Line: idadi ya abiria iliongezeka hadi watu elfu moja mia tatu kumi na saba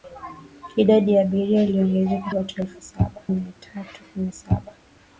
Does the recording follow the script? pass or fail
fail